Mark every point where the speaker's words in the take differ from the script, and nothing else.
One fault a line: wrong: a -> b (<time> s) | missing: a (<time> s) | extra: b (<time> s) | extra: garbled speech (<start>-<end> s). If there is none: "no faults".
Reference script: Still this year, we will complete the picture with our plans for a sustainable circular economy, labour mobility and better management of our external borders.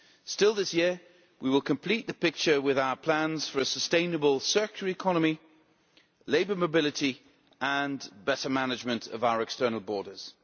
no faults